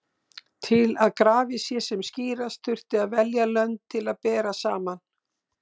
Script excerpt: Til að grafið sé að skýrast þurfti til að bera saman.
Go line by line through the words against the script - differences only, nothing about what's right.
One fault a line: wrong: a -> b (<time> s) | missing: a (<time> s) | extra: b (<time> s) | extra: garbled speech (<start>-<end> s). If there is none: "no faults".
wrong: að -> sem (1.9 s)
extra: að velja lönd (3.0 s)